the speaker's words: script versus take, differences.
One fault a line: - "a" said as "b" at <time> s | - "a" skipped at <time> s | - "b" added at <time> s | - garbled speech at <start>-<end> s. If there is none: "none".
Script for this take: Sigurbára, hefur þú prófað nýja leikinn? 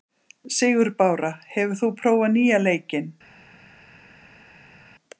none